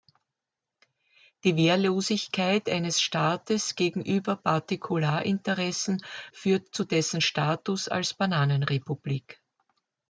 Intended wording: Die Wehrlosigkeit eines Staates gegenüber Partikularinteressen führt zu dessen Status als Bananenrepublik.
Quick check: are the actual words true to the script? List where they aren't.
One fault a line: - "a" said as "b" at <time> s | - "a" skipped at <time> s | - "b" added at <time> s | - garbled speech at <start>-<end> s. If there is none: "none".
none